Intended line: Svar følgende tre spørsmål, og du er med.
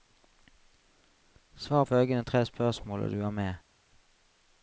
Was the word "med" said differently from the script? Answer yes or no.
no